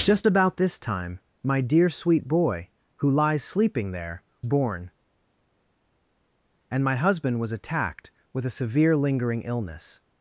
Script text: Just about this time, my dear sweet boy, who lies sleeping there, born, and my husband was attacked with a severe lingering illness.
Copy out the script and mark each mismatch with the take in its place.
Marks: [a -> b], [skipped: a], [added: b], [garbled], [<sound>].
Just about this time, my dear sweet boy, who lies sleeping there, born, and my husband was attacked with a severe lingering illness.